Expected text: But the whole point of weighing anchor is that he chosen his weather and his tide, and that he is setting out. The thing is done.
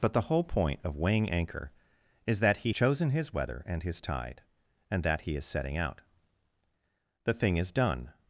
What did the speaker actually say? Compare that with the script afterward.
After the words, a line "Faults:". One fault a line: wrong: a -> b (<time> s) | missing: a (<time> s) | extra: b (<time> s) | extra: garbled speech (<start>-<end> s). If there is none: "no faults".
But the whole point of weighing anchor is that he chosen his weather and his tide, and that he is setting out. The thing is done.
Faults:
no faults